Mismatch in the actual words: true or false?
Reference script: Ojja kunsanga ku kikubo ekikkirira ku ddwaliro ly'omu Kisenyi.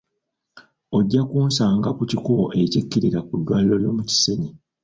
false